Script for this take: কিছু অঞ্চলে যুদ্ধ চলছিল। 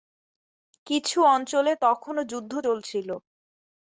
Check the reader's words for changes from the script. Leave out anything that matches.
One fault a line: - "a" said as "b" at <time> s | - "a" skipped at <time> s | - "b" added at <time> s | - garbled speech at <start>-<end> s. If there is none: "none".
- "তখনও" added at 1.8 s